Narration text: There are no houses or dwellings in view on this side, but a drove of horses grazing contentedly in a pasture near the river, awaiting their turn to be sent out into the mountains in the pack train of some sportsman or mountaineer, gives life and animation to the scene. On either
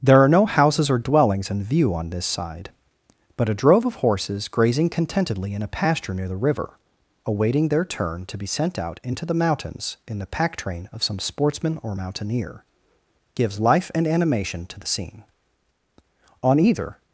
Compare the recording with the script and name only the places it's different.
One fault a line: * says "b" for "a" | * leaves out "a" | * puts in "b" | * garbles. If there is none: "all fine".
all fine